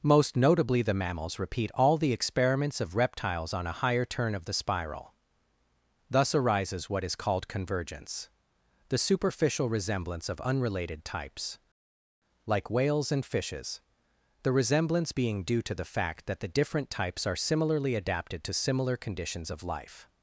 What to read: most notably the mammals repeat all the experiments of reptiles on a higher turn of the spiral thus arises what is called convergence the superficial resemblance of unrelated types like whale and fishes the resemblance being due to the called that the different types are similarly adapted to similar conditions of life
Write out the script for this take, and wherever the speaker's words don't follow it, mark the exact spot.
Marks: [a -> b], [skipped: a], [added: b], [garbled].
most notably the mammals repeat all the experiments of reptiles on a higher turn of the spiral thus arises what is called convergence the superficial resemblance of unrelated types like [whale -> whales] and fishes the resemblance being due to the [called -> fact] that the different types are similarly adapted to similar conditions of life